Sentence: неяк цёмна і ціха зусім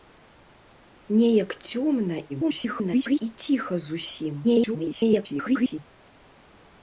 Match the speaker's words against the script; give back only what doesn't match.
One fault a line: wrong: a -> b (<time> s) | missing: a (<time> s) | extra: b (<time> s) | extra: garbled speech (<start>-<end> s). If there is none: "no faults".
extra: garbled speech (2.3-3.2 s)
extra: garbled speech (4.4-5.8 s)